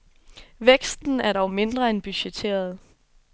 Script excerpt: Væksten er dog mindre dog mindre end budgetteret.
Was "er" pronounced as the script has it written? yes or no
yes